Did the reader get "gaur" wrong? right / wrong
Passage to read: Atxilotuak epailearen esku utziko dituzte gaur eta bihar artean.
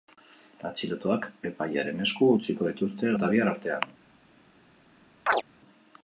wrong